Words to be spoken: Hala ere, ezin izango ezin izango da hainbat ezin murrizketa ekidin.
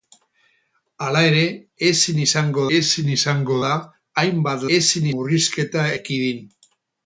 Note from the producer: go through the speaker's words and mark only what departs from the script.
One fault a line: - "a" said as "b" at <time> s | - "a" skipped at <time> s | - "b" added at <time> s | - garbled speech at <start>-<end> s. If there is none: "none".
none